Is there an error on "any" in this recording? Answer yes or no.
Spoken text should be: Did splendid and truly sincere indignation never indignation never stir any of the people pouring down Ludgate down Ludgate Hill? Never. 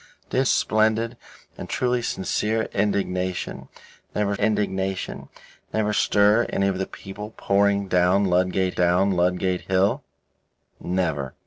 no